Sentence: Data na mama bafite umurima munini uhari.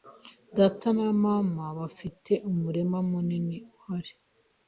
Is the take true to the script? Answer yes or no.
yes